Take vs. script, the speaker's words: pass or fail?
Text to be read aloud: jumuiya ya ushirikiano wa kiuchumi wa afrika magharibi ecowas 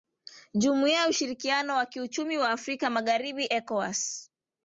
pass